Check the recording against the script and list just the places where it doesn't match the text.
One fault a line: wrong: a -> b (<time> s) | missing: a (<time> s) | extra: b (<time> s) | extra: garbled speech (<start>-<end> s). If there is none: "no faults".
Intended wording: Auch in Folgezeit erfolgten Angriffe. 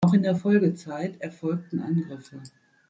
extra: der (0.2 s)